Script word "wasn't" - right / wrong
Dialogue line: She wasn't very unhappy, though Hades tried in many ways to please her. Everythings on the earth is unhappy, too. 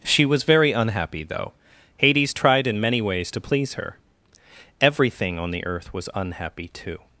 wrong